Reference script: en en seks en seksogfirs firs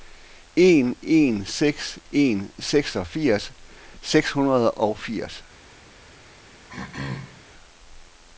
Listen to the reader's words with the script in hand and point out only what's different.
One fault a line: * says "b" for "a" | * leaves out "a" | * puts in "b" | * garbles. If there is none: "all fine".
* puts in "seks hundrede og"